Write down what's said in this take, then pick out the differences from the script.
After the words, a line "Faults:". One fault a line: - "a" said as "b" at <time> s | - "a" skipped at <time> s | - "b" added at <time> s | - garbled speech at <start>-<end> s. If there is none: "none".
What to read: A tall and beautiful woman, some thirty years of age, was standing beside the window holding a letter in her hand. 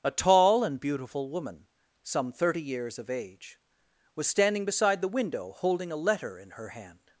A tall and beautiful woman, some thirty years of age, was standing beside the window holding a letter in her hand.
Faults:
none